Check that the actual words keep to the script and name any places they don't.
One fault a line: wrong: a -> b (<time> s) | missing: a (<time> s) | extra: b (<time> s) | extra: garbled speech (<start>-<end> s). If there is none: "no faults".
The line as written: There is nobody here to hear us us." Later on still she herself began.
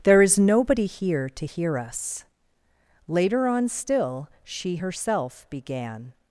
missing: us (2.2 s)